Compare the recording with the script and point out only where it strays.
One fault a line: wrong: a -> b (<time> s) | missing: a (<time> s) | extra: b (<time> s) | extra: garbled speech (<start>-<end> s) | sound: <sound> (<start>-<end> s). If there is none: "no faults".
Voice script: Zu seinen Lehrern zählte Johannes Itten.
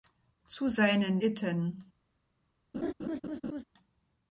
missing: Lehrern zählte Johannes (1.2 s)
sound: laugh (2.7-3.6 s)